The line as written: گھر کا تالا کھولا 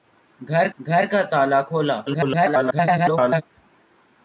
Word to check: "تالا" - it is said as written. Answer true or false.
true